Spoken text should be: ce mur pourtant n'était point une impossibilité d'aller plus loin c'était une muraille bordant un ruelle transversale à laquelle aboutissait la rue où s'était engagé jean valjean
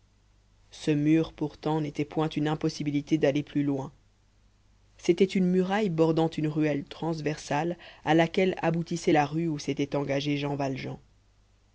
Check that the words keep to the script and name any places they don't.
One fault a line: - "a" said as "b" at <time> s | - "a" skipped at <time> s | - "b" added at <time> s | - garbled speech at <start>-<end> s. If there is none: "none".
- "un" said as "une" at 6.3 s